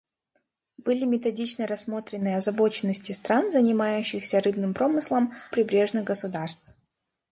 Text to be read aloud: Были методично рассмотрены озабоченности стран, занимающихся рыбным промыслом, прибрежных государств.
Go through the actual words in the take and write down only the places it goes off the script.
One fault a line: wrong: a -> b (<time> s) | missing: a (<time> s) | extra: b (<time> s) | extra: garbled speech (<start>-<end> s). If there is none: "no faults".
no faults